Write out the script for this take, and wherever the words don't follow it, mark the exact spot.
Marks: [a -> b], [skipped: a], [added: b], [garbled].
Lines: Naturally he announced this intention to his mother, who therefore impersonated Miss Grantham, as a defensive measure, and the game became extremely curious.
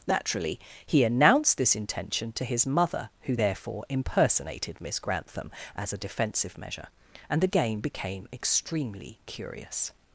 Naturally he announced this intention to his mother, who therefore impersonated Miss Grantham, as a defensive measure, and the game became extremely curious.